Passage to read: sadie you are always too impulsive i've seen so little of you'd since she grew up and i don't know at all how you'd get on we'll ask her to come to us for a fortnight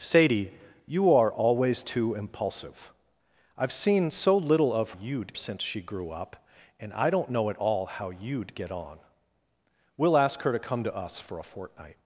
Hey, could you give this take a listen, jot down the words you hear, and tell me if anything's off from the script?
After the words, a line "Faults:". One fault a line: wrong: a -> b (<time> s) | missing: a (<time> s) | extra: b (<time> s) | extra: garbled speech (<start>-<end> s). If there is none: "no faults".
sadie you are always too impulsive i've seen so little of you'd since she grew up and i don't know at all how you'd get on we'll ask her to come to us for a fortnight
Faults:
no faults